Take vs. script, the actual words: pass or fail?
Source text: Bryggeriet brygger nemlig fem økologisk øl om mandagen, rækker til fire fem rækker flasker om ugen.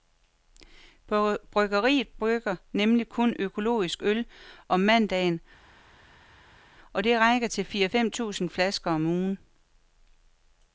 fail